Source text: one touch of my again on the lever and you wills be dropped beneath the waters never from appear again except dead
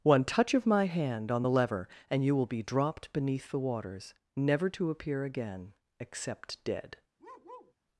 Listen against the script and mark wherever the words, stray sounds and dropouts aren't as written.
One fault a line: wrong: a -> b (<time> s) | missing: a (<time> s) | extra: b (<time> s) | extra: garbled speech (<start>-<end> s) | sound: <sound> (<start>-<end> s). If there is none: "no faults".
wrong: again -> hand (0.9 s)
wrong: wills -> will (2.3 s)
wrong: from -> to (4.7 s)
sound: bark (7.2-7.7 s)